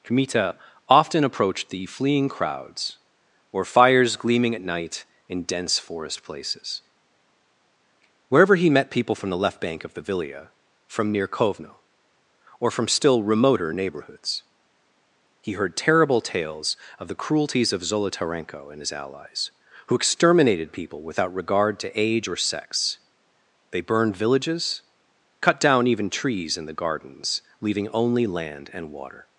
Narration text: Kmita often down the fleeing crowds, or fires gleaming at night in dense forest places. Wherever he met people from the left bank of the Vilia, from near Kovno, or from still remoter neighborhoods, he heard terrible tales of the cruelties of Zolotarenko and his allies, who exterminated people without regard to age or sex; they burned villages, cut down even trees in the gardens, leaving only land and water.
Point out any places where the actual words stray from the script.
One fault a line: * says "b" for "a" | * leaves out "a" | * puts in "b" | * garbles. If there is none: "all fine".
* says "approached" for "down"